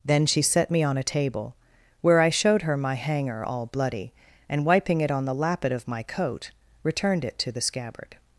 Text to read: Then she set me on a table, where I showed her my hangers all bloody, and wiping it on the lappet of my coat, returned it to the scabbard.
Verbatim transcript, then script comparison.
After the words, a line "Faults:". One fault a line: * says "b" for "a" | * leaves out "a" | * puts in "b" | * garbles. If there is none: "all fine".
Then she set me on a table, where I showed her my hanger all bloody, and wiping it on the lappet of my coat, returned it to the scabbard.
Faults:
* says "hanger" for "hangers"